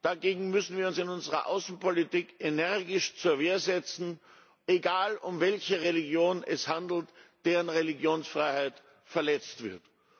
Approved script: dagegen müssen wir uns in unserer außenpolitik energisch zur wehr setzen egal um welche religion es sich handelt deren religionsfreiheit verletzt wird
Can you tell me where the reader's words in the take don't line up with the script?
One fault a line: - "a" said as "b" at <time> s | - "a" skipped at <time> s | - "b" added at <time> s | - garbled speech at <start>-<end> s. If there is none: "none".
none